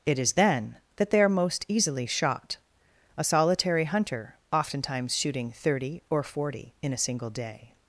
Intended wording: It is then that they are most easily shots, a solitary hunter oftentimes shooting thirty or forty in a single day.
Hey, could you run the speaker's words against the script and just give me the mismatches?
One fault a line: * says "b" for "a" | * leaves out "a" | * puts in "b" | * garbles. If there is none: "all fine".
* says "shot" for "shots"